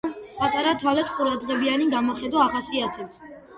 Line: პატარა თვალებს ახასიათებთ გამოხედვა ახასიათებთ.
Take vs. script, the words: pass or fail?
fail